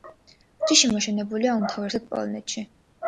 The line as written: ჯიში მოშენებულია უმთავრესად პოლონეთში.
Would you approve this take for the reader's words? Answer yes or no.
yes